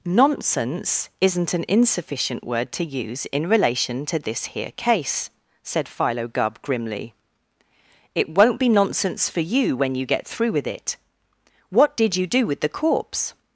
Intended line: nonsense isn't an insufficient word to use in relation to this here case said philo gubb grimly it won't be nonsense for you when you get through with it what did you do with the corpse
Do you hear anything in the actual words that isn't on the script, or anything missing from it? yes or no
no